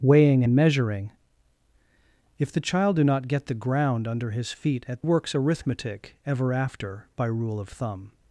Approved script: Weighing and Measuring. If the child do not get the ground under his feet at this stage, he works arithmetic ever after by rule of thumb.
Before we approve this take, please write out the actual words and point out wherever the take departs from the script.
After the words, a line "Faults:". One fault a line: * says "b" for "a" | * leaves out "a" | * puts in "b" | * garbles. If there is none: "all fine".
Weighing and Measuring. If the child do not get the ground under his feet at works arithmetic ever after by rule of thumb.
Faults:
* leaves out "this stage he"